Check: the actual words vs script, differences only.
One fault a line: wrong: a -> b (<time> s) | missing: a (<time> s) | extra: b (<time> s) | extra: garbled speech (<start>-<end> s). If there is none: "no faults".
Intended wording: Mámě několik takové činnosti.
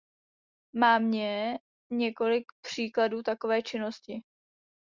extra: příkladů (2.6 s)